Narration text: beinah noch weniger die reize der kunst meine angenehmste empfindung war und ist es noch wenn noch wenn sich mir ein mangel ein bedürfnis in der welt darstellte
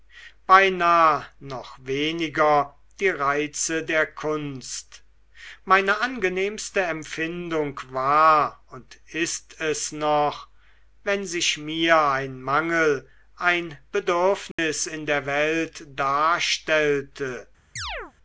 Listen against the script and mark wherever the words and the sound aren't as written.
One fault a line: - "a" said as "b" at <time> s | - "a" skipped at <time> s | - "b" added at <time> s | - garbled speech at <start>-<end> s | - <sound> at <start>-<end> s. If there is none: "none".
- "noch wenn" skipped at 11.2 s
- dropout at 14.5-14.6 s
- chirp at 17.8-18.1 s